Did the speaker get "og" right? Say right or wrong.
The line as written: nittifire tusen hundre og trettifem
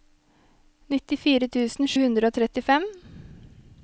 right